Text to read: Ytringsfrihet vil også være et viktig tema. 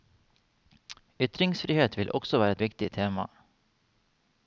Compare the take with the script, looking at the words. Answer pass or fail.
pass